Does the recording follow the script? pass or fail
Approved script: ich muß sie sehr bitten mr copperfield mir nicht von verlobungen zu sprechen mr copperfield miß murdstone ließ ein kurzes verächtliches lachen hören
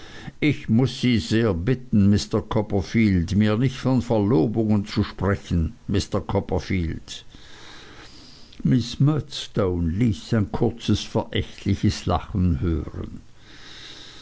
pass